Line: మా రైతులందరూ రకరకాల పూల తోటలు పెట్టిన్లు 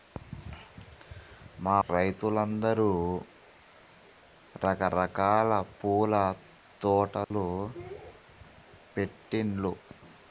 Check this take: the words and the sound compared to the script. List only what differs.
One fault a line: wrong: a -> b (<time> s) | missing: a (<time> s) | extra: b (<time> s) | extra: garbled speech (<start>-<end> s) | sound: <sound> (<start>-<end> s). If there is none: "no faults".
sound: dropout (7.2-7.3 s)